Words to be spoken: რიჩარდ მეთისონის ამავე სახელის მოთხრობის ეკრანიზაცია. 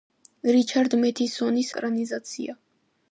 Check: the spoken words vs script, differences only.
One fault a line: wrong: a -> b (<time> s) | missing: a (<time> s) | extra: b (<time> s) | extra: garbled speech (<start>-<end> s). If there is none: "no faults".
missing: ამავე სახელის მოთხრობის (1.7 s)